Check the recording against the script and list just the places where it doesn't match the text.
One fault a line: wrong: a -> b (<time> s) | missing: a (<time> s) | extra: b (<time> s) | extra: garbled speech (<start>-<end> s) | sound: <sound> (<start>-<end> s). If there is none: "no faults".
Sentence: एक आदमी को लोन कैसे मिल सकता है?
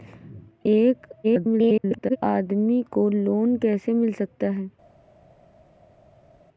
extra: garbled speech (1.2-2.2 s)